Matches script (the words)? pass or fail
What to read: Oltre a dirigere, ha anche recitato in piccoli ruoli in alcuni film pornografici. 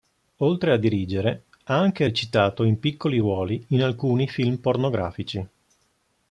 pass